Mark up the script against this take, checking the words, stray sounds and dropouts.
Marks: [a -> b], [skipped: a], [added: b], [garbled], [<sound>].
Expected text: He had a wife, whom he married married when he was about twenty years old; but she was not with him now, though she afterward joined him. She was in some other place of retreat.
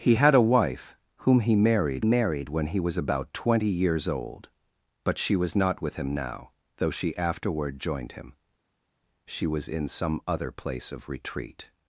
He had a wife, whom he married married when he was about twenty years old; but she was not with him now, though she afterward joined him. She was in some other place of retreat.